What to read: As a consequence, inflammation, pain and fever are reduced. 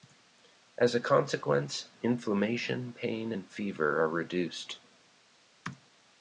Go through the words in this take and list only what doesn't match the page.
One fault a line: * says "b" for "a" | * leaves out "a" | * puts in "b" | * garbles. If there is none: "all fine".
all fine